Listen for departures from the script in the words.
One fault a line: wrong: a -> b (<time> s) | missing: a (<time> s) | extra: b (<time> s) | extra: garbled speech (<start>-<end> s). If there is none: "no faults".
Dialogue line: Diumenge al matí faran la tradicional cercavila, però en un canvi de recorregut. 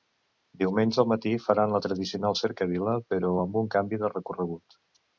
wrong: en -> amb (3.4 s)